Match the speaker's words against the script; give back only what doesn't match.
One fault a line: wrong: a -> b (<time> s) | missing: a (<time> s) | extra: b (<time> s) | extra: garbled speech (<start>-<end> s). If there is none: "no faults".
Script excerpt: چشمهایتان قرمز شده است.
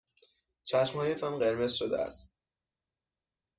no faults